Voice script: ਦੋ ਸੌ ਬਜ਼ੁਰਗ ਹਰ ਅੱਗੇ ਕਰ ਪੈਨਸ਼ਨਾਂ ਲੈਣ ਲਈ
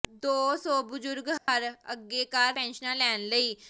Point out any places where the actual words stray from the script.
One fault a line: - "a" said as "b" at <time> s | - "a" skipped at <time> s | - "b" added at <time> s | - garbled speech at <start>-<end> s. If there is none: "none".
none